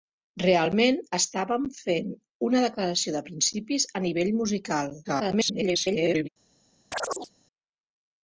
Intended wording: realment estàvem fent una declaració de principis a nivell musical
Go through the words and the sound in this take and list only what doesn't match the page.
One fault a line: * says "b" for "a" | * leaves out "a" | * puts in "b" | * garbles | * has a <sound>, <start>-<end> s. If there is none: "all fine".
* garbles
* has a chirp, 6.9-7.3 s